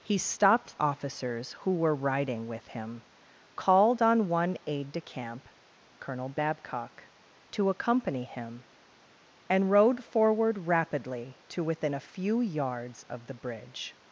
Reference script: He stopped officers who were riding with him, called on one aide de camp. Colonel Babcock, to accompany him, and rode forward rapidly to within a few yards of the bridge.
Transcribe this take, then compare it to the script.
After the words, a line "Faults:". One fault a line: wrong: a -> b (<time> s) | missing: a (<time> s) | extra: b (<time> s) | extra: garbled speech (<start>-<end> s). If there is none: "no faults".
He stopped officers who were riding with him, called on one aide de camp. Colonel Babcock, to accompany him, and rode forward rapidly to within a few yards of the bridge.
Faults:
no faults